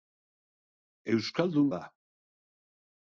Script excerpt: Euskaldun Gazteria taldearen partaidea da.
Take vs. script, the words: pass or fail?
fail